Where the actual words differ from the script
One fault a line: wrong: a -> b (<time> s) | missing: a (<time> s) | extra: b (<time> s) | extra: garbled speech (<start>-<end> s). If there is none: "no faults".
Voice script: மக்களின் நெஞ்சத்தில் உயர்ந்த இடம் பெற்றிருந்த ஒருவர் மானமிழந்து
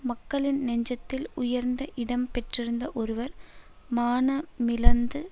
no faults